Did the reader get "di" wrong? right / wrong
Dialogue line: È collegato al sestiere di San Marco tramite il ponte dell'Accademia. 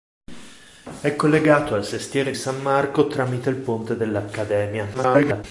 wrong